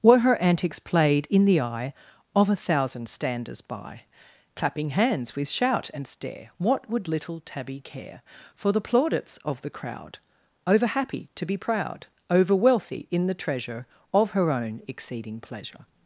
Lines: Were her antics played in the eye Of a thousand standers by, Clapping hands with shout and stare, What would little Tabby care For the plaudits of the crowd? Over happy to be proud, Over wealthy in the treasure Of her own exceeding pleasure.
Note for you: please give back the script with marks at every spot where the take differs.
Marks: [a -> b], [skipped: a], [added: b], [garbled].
Were her antics played in the eye Of a thousand standers by, Clapping hands with shout and stare, What would little Tabby care For the plaudits of the crowd? Over happy to be proud, Over wealthy in the treasure Of her own exceeding pleasure.